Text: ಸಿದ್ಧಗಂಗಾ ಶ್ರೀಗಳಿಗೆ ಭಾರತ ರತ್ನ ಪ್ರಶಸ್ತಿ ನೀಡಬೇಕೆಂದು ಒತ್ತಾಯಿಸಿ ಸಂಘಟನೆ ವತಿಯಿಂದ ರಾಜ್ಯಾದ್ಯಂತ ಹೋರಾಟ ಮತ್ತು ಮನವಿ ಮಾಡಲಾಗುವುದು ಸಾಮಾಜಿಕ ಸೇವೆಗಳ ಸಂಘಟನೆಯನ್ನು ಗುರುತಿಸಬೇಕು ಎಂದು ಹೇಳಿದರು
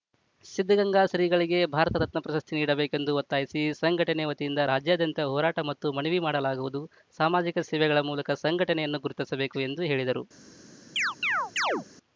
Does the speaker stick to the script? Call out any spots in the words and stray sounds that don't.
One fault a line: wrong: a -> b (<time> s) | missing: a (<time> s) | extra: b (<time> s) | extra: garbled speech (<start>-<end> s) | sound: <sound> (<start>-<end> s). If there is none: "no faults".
extra: ಮೂಲಕ (8.1 s)
sound: chirp (11.0-11.9 s)